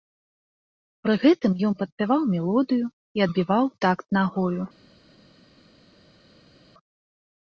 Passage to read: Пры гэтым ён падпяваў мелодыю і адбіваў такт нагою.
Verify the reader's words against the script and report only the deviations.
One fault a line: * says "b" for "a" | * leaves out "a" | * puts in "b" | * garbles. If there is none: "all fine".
all fine